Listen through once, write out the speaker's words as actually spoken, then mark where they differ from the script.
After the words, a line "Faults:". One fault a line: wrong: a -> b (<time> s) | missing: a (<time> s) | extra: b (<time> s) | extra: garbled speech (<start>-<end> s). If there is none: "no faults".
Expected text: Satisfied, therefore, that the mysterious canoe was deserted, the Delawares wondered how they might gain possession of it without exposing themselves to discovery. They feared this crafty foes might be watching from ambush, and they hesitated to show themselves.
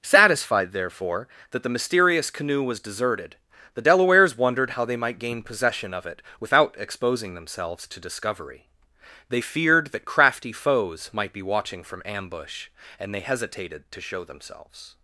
Satisfied, therefore, that the mysterious canoe was deserted, the Delawares wondered how they might gain possession of it without exposing themselves to discovery. They feared that crafty foes might be watching from ambush, and they hesitated to show themselves.
Faults:
wrong: this -> that (9.9 s)